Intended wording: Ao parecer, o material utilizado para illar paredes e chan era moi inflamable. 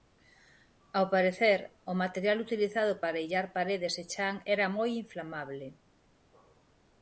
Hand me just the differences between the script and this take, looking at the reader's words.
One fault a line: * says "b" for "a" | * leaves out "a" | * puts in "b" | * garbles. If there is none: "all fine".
all fine